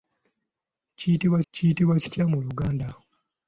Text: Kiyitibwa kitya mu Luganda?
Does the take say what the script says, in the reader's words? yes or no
no